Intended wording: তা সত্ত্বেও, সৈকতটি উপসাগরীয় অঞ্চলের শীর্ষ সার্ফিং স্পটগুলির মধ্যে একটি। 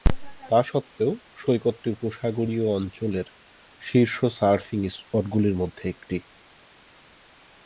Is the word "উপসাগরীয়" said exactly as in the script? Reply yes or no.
yes